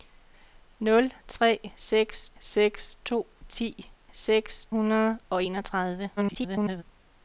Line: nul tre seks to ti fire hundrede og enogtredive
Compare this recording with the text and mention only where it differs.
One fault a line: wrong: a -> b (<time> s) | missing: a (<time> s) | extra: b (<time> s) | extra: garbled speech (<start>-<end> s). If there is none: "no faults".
extra: seks (2.4 s)
wrong: fire -> seks (4.1 s)
extra: garbled speech (6.2-6.8 s)